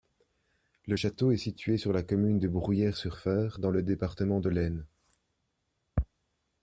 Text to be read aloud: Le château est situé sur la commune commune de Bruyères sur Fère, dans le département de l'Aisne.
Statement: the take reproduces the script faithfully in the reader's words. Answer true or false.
false